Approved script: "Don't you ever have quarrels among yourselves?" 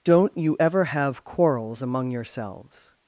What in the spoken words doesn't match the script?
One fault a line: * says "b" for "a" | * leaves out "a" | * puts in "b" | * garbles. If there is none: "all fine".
all fine